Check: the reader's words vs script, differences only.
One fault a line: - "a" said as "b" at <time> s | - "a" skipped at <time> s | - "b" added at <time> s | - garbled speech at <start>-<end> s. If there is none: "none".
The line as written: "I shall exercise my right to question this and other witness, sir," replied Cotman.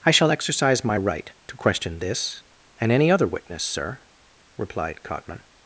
- "any" added at 2.9 s